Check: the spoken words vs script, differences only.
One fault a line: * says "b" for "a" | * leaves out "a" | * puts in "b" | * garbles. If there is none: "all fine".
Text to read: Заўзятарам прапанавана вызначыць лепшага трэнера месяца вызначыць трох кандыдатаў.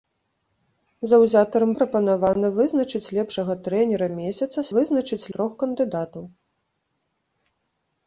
all fine